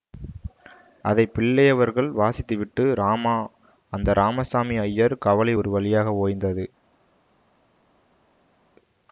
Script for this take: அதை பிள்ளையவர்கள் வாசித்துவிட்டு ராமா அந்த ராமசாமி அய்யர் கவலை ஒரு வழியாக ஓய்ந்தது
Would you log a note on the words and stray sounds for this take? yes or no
no